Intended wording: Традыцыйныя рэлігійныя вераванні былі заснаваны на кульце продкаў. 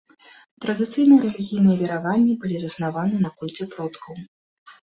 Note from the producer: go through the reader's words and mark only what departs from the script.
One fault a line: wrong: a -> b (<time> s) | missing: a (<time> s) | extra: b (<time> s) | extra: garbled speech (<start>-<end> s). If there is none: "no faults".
no faults